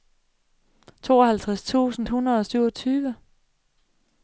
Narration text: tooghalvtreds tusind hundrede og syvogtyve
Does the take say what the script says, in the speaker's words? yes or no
yes